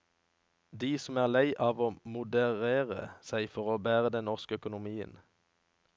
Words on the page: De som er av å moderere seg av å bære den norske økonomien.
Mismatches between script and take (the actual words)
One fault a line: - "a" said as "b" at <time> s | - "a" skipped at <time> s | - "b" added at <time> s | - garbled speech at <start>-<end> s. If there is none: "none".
- "lei" added at 1.3 s
- "av" said as "for" at 3.6 s